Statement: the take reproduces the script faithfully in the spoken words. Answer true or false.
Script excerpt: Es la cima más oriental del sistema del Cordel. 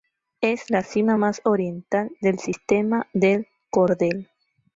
true